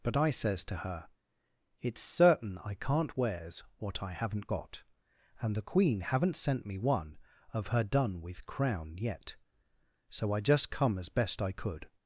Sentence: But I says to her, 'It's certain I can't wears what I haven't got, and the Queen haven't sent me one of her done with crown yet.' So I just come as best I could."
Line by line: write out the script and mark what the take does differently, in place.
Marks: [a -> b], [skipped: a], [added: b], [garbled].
But I says to her, 'It's certain I can't wears what I haven't got, and the Queen haven't sent me one of her done with crown yet.' So I just come as best I could."